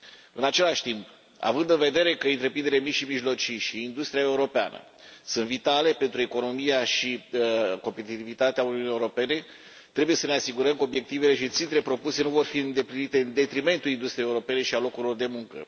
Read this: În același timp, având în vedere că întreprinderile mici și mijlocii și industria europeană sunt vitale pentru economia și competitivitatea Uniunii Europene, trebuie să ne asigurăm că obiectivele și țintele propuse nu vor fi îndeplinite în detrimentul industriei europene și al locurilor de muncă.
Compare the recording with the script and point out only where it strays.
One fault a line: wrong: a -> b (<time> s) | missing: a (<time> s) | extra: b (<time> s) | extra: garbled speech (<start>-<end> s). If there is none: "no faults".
no faults